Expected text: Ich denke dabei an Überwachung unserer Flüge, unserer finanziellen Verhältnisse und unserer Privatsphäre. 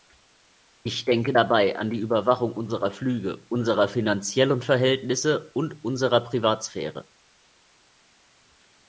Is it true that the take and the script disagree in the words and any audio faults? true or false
true